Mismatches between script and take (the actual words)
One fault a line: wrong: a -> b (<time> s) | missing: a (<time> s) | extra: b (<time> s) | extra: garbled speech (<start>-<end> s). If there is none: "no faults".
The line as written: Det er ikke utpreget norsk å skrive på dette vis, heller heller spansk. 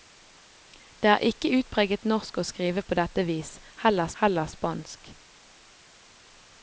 no faults